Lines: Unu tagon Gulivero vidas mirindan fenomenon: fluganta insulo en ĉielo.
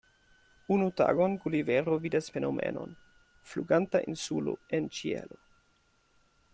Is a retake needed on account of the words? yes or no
yes